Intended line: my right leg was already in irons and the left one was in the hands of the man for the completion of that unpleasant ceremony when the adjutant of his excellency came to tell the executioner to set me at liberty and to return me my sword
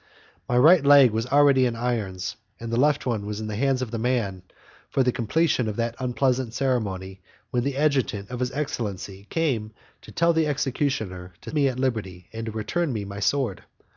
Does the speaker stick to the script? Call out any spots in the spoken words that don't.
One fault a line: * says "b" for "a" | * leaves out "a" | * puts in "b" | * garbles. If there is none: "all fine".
* leaves out "set"